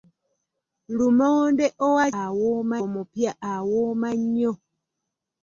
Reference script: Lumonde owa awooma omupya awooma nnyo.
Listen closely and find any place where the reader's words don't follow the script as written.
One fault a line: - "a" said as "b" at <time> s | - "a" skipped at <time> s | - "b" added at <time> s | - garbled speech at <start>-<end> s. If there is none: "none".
none